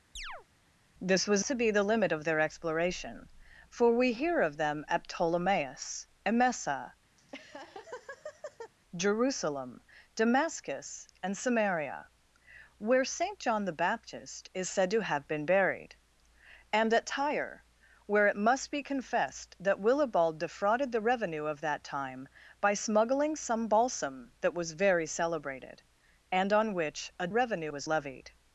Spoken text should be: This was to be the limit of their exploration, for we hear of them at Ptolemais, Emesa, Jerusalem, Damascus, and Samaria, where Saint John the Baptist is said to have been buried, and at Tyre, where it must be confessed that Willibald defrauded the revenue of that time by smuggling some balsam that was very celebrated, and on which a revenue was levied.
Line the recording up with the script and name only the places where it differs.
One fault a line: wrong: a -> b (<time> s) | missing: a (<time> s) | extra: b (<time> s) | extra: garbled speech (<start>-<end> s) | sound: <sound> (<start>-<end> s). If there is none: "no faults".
sound: chirp (0.2-0.5 s)
sound: laugh (7.2-8.7 s)